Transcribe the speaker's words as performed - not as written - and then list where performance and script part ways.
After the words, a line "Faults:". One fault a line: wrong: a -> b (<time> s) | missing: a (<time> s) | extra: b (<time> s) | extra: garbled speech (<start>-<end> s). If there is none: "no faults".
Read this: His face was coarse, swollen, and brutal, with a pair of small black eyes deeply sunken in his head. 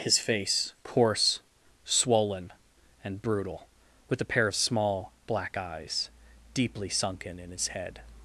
His face coarse, swollen, and brutal, with a pair of small black eyes deeply sunken in his head.
Faults:
missing: was (0.7 s)